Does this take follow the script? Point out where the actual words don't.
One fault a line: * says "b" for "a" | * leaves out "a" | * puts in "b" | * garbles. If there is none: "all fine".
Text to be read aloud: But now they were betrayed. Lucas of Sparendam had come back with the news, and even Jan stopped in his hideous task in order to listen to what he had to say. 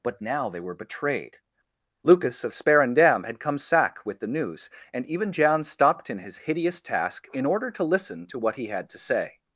* says "sack" for "back"